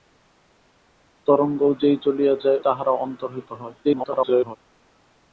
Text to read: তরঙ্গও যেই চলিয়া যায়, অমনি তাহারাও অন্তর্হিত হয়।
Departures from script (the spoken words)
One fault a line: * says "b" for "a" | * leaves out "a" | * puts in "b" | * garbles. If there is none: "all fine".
* leaves out "অমনি"
* garbles